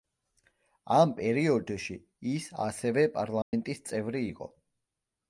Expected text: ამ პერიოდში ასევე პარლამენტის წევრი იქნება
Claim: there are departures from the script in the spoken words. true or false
true